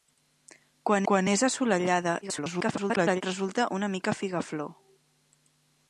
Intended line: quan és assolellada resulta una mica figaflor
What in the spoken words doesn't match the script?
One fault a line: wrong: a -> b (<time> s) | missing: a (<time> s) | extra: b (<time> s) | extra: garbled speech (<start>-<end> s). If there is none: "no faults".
extra: quan (1.1 s)
extra: garbled speech (2.2-3.2 s)